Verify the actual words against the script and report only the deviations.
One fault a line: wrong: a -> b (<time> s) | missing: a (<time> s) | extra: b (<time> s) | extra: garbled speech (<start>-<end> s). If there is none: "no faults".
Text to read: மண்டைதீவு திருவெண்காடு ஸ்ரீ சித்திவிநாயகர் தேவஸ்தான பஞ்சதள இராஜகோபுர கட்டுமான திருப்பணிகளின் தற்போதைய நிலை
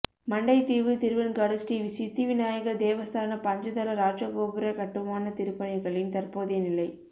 no faults